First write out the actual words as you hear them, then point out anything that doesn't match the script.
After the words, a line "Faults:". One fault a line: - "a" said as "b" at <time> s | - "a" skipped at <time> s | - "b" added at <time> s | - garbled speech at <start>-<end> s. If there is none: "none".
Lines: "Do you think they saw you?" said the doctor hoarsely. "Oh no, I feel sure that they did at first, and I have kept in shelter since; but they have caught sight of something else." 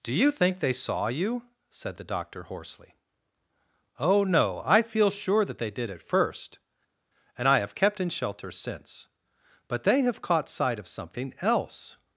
"Do you think they saw you?" said the doctor hoarsely. "Oh no, I feel sure that they did at first, and I have kept in shelter since; but they have caught sight of something else."
Faults:
none